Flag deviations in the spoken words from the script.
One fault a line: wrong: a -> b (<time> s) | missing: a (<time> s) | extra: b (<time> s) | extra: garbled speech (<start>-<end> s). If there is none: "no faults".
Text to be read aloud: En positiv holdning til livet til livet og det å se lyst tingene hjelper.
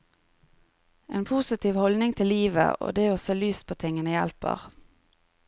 missing: til livet (2.8 s)
extra: på (3.7 s)